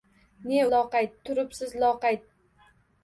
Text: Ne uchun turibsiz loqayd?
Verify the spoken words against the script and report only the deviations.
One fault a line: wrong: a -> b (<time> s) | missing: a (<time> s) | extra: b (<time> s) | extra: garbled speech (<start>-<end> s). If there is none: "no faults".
wrong: uchun -> loqayd (0.8 s)